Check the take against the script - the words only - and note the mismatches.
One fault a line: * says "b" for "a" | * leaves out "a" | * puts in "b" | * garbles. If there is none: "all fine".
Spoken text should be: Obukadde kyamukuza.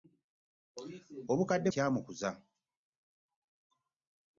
all fine